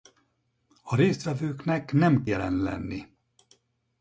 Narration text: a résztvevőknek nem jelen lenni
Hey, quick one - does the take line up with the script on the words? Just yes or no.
yes